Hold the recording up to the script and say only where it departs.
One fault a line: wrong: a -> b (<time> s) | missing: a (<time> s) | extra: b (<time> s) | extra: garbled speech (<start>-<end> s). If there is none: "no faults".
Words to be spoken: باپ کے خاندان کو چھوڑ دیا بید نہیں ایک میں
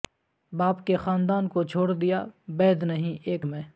no faults